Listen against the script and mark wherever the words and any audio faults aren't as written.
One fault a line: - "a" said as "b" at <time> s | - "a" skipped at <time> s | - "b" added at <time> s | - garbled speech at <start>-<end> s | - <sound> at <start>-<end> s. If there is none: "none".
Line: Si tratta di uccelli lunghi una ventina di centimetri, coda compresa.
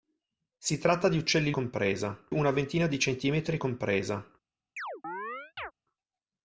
- "lunghi" said as "compresa" at 1.5 s
- "coda" skipped at 3.6 s
- chirp at 4.8-5.7 s